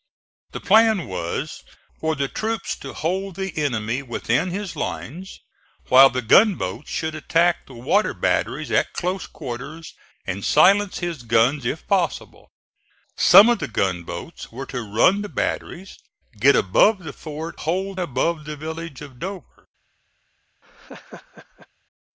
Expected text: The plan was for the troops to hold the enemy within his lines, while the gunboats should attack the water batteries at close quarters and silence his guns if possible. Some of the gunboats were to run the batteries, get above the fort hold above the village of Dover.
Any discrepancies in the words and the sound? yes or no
yes